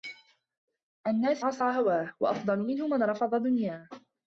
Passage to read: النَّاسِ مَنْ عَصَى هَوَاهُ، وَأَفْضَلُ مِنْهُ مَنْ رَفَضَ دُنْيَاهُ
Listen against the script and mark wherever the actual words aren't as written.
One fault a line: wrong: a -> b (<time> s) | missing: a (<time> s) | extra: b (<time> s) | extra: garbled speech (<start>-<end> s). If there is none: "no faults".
missing: مَنْ (1.4 s)